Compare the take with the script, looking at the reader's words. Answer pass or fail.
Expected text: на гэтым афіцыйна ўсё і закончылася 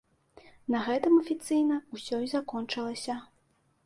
pass